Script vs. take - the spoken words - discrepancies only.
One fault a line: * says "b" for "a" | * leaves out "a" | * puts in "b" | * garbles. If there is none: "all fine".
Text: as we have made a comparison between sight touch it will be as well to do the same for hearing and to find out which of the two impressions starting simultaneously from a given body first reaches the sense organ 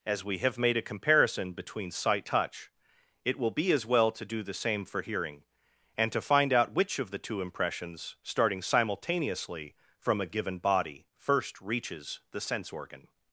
all fine